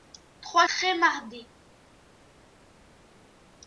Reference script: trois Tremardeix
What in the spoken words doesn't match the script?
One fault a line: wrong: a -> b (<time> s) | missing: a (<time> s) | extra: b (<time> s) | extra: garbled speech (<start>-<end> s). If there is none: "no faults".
no faults